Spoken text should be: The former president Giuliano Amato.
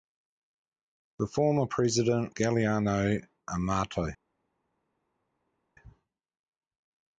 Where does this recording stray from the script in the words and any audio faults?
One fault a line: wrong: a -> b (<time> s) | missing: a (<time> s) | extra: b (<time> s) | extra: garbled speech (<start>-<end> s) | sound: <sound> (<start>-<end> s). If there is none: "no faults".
no faults